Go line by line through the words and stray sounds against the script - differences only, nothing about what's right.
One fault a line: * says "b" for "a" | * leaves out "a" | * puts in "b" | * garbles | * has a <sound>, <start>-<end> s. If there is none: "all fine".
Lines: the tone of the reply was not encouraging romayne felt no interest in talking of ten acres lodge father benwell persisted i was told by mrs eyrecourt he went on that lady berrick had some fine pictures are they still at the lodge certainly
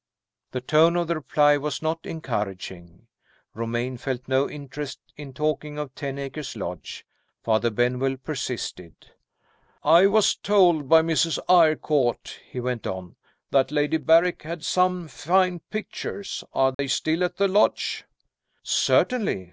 * has a dropout, 16.7-16.8 s